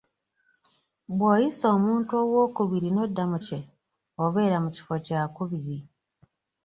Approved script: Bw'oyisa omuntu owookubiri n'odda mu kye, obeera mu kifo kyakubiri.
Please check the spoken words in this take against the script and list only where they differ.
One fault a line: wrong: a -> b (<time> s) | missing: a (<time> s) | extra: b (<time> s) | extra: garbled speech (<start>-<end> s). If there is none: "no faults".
no faults